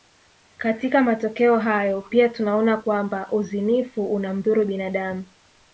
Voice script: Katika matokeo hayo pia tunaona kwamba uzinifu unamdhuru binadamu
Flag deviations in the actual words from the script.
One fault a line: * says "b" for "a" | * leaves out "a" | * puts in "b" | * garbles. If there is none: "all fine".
all fine